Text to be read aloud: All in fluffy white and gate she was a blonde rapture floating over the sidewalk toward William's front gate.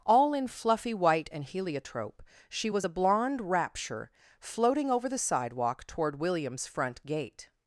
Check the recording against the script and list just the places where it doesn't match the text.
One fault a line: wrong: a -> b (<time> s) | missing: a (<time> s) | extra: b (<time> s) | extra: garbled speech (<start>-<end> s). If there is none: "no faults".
wrong: gate -> heliotrope (1.4 s)